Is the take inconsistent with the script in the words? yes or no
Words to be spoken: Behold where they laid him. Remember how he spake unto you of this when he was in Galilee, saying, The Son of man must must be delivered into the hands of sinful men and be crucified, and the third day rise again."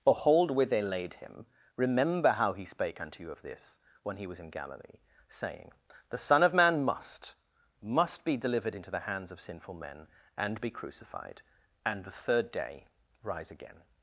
no